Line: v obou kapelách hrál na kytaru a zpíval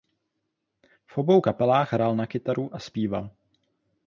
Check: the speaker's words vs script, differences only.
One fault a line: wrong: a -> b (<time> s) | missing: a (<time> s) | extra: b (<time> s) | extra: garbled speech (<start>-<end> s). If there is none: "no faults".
no faults